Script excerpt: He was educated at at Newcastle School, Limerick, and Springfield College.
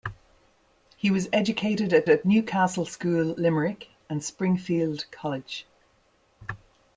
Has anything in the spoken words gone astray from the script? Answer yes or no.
no